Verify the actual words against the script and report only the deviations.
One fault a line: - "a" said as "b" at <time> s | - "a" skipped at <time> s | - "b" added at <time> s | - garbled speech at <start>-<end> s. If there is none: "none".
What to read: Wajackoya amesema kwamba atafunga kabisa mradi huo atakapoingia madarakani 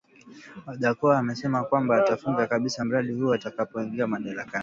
none